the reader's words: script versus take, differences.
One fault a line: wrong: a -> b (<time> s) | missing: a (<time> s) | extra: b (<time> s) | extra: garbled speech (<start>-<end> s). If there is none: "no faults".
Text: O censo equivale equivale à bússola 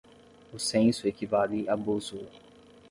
missing: equivale (1.7 s)